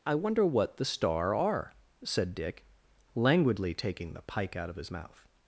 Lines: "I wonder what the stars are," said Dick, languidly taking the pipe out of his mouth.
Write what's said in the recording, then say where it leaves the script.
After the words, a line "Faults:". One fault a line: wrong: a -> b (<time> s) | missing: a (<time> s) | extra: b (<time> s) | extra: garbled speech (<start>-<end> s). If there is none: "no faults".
"I wonder what the star are," said Dick, languidly taking the pike out of his mouth.
Faults:
wrong: stars -> star (0.8 s)
wrong: pipe -> pike (4.2 s)